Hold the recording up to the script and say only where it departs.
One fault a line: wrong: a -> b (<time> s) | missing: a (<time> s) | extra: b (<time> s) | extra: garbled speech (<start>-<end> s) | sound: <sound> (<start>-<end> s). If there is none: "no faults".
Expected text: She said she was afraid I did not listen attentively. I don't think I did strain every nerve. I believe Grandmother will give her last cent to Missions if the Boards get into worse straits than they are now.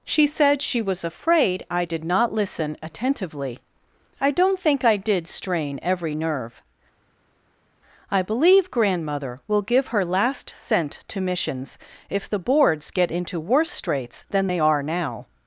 no faults